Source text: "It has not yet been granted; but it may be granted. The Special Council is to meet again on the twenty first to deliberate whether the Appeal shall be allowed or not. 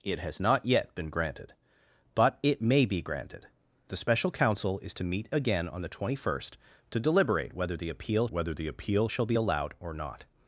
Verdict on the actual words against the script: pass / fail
fail